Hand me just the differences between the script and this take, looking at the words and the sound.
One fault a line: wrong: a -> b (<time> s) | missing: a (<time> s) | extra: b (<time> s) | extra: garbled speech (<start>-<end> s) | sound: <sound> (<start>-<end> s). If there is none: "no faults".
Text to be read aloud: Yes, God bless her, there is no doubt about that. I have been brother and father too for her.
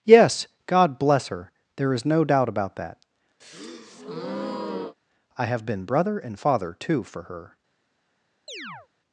sound: breath (3.4-5.0 s)
sound: chirp (8.5-8.9 s)